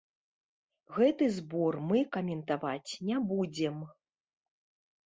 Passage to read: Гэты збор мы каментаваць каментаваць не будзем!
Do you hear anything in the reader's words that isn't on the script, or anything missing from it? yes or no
yes